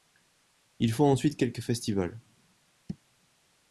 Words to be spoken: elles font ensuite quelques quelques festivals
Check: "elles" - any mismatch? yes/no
yes